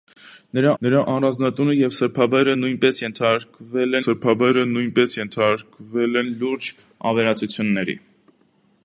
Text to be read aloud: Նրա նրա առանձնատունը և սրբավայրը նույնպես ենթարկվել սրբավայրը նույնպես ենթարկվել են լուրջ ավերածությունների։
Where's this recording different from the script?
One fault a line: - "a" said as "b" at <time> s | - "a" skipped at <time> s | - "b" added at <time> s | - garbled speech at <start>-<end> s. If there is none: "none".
none